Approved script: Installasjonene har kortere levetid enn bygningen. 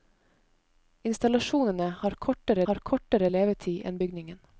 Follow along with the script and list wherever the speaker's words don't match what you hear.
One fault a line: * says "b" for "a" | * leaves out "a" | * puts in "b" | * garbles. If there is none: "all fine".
* puts in "har kortere"